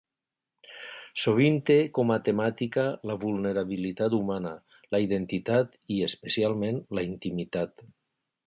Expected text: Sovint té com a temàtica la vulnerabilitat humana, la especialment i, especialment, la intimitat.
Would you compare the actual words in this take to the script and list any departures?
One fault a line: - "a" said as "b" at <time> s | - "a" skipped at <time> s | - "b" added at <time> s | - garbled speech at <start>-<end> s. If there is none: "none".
- "especialment" said as "identitat" at 5.1 s